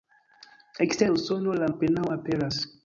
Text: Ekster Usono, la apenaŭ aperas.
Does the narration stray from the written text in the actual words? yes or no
no